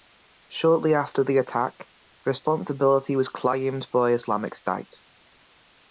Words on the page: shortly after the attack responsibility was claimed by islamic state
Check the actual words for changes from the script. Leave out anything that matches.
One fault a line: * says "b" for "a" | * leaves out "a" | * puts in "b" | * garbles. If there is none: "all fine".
all fine